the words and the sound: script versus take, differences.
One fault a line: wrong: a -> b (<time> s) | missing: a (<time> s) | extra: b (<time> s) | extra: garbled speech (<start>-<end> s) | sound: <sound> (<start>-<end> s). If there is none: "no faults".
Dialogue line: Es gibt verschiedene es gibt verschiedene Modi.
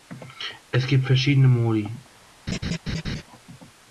missing: es gibt verschiedene (1.5 s)
sound: laugh (2.5-3.2 s)